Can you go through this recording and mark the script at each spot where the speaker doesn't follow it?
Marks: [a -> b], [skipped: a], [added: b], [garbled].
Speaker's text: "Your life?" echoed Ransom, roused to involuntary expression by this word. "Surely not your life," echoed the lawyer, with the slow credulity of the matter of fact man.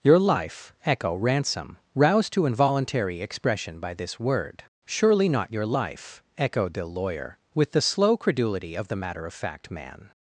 "Your life?" [echoed -> echo] Ransom, roused to involuntary expression by this word. "Surely not your life," echoed the lawyer, with the slow credulity of the matter of fact man.